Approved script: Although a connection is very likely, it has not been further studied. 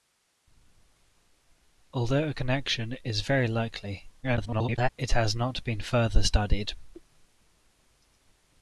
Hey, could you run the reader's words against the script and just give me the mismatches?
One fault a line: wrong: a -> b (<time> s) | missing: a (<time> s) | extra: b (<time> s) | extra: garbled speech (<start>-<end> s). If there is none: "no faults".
extra: garbled speech (4.2-4.9 s)